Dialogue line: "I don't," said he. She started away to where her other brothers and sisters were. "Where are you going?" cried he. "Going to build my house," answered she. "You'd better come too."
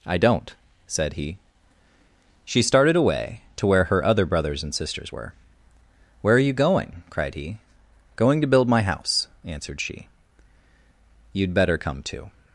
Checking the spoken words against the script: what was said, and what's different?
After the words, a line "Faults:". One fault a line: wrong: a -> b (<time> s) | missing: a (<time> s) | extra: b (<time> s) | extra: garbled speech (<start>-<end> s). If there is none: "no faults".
"I don't," said he. She started away to where her other brothers and sisters were. "Where are you going?" cried he. "Going to build my house," answered she. "You'd better come too."
Faults:
no faults